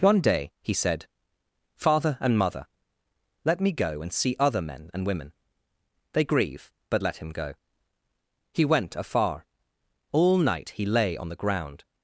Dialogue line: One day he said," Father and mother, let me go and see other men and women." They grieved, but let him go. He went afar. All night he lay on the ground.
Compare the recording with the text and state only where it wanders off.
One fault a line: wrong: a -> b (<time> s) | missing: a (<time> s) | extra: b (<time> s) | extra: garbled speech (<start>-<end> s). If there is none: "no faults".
wrong: grieved -> grieve (6.2 s)